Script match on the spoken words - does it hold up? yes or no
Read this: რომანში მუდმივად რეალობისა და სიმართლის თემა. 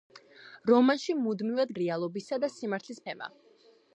yes